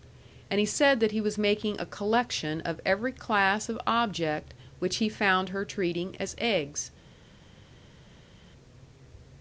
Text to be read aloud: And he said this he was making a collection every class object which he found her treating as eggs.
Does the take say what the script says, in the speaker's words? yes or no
no